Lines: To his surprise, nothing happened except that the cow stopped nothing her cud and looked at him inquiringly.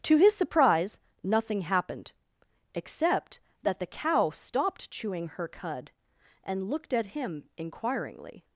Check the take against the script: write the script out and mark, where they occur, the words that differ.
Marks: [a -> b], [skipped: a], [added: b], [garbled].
To his surprise, nothing happened except that the cow stopped [nothing -> chewing] her cud and looked at him inquiringly.